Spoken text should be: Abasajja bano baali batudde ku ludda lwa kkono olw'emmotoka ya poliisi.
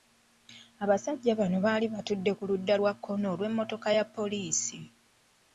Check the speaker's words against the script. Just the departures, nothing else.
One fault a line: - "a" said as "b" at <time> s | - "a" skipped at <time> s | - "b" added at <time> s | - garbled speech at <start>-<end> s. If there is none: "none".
none